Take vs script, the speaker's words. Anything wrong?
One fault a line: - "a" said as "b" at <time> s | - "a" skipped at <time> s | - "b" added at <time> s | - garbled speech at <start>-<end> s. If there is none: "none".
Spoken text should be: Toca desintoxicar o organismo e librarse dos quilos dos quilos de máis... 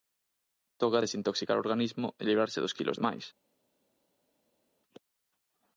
- "dos quilos" skipped at 3.0 s